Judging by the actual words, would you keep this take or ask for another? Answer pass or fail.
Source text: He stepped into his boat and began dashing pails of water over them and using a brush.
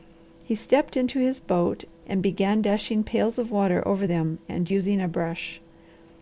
pass